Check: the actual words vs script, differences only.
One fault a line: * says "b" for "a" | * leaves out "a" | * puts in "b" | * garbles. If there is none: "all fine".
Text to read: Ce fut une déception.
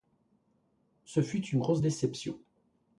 * puts in "grosse"